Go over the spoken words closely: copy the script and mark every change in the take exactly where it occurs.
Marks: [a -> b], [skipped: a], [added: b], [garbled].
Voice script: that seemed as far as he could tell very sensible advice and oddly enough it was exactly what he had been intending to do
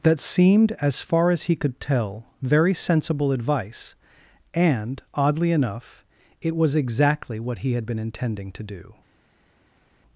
that seemed as far as he could tell very sensible advice and oddly enough it was exactly what he had been intending to do